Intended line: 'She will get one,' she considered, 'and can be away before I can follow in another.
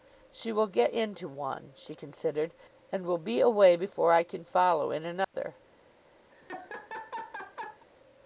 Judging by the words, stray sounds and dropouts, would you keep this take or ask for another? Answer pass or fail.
fail